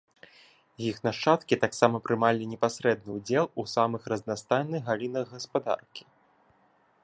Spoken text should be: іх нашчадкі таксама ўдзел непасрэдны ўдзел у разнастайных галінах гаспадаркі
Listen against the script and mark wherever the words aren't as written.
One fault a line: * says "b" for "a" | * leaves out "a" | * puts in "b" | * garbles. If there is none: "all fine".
* says "прымалі" for "ўдзел"
* puts in "самых"